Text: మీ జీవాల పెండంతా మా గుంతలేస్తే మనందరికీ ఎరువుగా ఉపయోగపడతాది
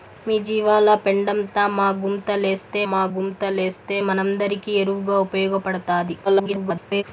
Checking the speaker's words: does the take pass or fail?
fail